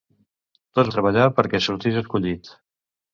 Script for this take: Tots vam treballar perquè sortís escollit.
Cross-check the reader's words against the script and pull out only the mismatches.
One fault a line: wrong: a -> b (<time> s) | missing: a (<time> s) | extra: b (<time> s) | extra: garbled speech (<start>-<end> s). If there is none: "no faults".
missing: vam (0.9 s)